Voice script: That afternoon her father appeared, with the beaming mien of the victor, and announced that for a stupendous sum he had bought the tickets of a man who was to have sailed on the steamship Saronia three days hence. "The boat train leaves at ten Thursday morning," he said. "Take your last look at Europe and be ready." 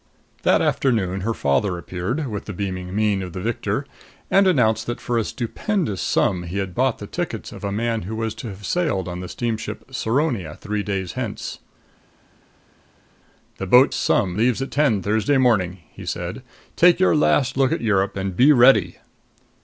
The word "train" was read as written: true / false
false